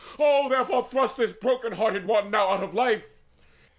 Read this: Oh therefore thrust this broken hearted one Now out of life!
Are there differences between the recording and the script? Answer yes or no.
no